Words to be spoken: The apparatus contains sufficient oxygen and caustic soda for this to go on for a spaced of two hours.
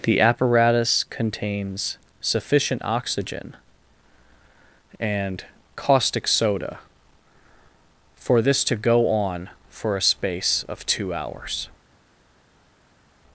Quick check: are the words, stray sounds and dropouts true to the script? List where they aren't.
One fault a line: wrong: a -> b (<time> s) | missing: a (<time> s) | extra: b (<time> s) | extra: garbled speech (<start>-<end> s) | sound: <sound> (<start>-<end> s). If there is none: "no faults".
wrong: spaced -> space (10.0 s)